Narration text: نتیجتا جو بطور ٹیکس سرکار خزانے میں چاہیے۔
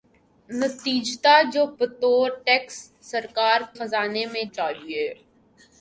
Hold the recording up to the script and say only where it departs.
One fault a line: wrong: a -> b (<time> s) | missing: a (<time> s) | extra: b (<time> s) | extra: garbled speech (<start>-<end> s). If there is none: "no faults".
no faults